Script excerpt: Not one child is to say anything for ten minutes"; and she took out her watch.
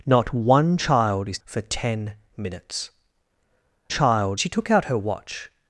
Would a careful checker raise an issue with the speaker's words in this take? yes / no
yes